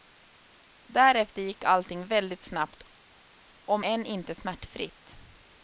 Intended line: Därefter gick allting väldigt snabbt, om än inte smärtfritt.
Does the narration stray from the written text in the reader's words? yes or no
no